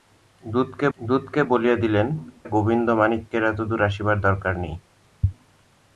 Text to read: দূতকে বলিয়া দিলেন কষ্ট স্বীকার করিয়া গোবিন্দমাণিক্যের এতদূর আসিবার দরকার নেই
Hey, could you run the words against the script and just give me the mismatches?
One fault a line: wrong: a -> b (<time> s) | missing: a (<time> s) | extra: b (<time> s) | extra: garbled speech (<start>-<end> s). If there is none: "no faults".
extra: দূতকে (1.0 s)
missing: কষ্ট স্বীকার করিয়া (2.1 s)